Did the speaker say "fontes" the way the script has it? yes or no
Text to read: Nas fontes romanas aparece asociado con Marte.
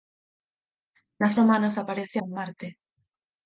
no